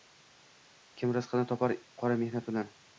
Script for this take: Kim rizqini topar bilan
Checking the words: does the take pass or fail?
fail